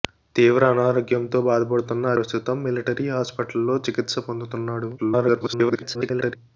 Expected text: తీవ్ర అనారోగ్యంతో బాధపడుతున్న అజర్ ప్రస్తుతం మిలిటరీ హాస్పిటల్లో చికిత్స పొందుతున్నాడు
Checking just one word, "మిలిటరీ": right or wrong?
right